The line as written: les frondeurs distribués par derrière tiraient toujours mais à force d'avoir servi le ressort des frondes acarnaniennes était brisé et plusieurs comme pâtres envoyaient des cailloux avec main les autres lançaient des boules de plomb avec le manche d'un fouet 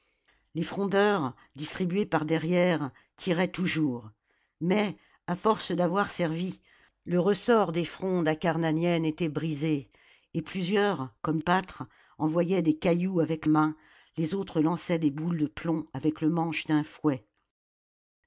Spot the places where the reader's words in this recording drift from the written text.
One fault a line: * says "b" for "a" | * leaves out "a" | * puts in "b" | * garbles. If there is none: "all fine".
all fine